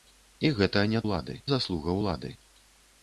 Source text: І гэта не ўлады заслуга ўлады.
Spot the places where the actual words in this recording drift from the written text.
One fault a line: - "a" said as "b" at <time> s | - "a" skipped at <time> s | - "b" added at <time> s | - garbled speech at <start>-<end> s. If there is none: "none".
none